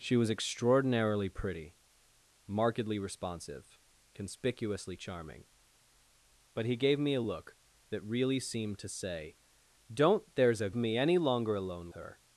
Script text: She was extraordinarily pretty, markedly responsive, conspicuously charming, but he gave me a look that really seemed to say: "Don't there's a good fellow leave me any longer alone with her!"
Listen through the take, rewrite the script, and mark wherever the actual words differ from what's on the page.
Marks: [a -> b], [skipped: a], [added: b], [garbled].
She was extraordinarily pretty, markedly responsive, conspicuously charming, but he gave me a look that really seemed to say: "Don't there's a [skipped: good fellow leave] me any longer alone [skipped: with] her!"